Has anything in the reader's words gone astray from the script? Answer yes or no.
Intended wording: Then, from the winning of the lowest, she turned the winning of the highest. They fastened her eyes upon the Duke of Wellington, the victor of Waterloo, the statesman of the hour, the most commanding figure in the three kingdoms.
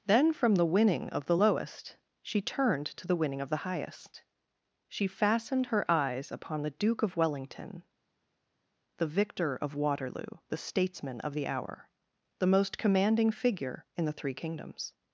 yes